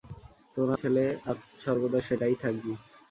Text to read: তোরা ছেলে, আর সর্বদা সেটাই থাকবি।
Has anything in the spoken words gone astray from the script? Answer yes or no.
no